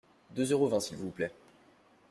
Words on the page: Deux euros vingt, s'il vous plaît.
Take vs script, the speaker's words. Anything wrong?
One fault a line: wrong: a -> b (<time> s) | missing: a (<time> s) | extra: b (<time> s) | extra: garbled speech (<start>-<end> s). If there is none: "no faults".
no faults